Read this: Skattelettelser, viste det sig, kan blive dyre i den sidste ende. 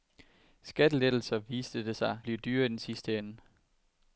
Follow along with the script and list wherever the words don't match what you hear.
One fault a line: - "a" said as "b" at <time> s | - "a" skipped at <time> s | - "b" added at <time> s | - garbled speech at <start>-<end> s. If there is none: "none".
- "kan" skipped at 2.2 s